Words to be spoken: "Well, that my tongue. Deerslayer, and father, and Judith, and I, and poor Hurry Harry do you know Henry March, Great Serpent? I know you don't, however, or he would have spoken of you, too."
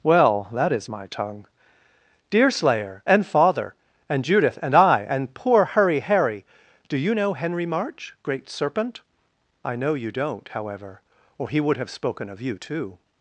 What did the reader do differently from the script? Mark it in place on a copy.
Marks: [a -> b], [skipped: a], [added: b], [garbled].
"Well, that [added: is] my tongue. Deerslayer, and father, and Judith, and I, and poor Hurry Harry do you know Henry March, Great Serpent? I know you don't, however, or he would have spoken of you, too."